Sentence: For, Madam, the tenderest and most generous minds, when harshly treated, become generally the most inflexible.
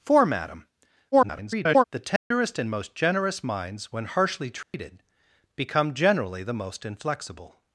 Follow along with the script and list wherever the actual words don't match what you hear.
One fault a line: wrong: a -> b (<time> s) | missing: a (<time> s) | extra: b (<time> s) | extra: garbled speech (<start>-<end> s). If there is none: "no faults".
extra: garbled speech (1.1-1.8 s)